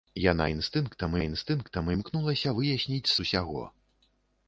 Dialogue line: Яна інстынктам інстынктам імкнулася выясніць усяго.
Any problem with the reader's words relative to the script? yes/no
no